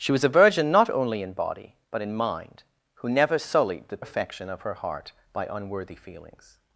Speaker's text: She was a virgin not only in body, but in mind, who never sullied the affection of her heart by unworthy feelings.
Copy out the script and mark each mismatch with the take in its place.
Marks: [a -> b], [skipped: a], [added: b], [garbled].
She was a virgin not only in body, but in mind, who never sullied the affection of her heart by unworthy feelings.